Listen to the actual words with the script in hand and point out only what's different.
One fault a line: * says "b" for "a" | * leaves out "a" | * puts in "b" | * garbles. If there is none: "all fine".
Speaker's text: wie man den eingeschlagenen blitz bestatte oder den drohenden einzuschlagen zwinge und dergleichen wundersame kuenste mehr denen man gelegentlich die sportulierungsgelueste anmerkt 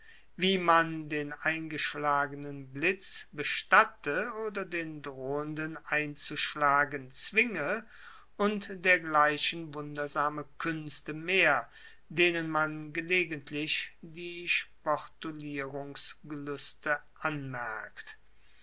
all fine